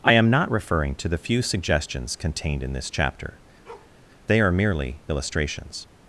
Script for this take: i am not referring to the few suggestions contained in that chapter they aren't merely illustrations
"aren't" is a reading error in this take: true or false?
true